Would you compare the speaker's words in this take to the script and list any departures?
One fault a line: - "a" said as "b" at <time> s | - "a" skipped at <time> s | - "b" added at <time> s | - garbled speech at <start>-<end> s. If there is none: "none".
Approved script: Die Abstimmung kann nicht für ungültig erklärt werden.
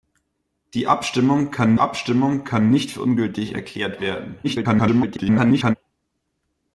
- "Abstimmung kann" added at 1.8 s
- garbled speech at 4.4-5.7 s